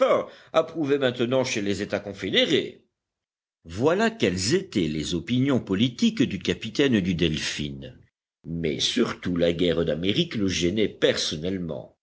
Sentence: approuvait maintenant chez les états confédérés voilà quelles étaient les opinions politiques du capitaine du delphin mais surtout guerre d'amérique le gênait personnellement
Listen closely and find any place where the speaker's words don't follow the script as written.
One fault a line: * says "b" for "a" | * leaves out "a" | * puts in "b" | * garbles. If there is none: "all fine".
* puts in "la"